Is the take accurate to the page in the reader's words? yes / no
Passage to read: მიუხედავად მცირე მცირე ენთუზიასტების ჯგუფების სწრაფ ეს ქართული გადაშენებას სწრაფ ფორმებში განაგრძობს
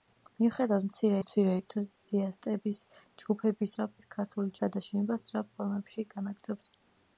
yes